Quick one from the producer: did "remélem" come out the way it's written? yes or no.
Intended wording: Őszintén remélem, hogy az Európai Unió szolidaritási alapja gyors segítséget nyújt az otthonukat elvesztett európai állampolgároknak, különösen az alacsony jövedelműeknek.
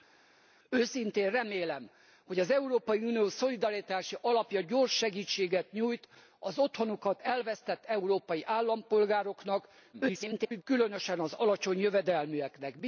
yes